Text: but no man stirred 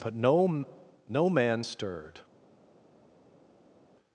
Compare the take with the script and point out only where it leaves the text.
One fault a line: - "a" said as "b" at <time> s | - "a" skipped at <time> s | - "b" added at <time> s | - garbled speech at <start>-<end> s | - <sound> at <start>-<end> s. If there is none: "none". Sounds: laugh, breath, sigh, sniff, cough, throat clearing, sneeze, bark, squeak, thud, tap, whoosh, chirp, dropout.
- "no" added at 1.1 s